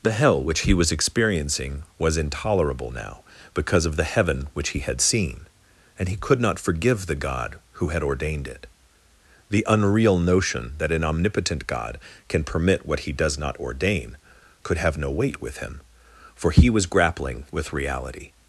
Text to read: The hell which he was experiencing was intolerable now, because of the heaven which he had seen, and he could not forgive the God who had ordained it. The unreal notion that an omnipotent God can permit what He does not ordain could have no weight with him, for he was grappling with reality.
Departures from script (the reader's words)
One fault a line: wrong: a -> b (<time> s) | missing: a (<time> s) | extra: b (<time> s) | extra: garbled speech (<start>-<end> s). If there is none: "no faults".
no faults